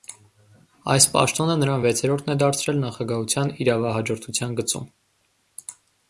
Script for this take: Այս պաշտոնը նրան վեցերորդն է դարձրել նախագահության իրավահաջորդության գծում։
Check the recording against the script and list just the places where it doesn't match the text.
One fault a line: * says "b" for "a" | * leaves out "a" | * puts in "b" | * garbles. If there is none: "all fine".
all fine